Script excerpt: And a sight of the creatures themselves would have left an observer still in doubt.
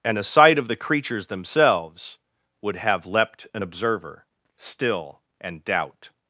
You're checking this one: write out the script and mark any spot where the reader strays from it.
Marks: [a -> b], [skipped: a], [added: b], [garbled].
And a sight of the creatures themselves would have [left -> leapt] an observer still [in -> and] doubt.